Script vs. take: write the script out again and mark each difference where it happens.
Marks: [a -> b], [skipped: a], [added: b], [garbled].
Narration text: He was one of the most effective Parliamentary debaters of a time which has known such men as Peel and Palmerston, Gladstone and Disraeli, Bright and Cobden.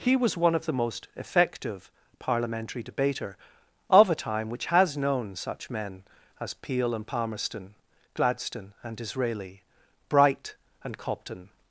He was one of the most effective Parliamentary [debaters -> debater] of a time which has known such men as Peel and Palmerston, Gladstone and Disraeli, Bright and Cobden.